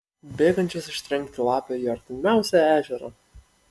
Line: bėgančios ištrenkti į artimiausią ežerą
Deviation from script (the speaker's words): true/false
true